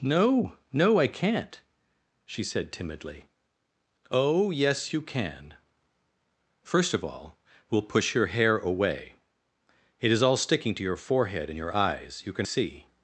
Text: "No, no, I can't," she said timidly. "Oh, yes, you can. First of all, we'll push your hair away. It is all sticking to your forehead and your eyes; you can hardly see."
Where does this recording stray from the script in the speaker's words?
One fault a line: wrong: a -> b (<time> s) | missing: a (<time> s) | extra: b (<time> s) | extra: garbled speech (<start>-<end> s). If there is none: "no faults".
missing: hardly (12.5 s)